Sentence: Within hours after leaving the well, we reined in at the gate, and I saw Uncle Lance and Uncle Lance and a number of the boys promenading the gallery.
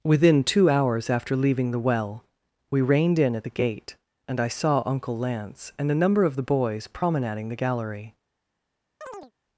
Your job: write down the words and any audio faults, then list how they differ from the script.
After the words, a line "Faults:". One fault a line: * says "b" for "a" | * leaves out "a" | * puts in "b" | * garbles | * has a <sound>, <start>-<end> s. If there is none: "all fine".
Within two hours after leaving the well, we reined in at the gate, and I saw Uncle Lance and a number of the boys promenading the gallery.
Faults:
* puts in "two"
* leaves out "Uncle Lance and"
* has a chirp, 9.0-9.3 s